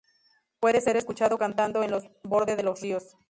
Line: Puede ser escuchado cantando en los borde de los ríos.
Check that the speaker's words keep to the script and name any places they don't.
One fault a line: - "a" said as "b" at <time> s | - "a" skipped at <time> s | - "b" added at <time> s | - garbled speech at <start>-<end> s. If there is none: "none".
none